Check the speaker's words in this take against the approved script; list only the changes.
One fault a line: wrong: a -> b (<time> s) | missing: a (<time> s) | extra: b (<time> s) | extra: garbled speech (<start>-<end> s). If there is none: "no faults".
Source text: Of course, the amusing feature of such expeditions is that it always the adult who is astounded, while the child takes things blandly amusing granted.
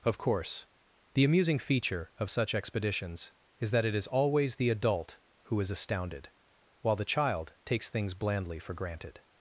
extra: is (3.9 s)
wrong: amusing -> for (8.6 s)